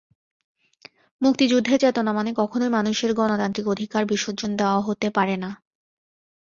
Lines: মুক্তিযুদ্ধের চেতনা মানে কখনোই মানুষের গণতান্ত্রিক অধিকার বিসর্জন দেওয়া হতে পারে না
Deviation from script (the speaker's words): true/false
false